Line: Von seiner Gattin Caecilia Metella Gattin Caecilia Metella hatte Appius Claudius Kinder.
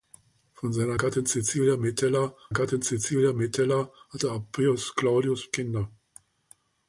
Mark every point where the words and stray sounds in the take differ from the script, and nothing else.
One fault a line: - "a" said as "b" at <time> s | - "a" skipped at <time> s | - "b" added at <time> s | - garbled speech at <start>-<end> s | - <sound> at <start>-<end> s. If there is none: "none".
none